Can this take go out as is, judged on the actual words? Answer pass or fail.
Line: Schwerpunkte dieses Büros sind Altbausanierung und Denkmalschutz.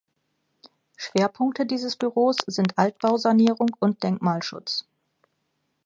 pass